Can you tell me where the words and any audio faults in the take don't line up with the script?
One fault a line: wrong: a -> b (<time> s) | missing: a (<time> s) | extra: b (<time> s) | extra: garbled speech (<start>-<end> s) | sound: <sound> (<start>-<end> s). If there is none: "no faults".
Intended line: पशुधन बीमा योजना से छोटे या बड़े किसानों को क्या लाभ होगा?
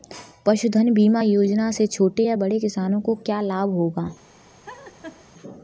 sound: laugh (4.6-5.3 s)